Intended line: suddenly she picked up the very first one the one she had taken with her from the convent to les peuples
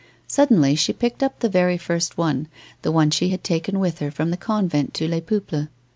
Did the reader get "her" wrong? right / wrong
right